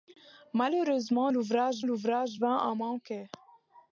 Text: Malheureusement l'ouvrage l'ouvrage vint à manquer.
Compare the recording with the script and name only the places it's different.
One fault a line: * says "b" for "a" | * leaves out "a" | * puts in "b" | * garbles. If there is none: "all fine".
all fine